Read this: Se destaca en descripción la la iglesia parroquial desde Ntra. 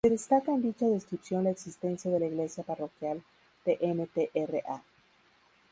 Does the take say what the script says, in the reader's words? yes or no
no